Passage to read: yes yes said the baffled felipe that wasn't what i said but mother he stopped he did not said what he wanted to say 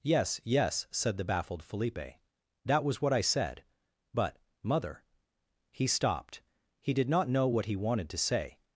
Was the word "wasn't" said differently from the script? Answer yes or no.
yes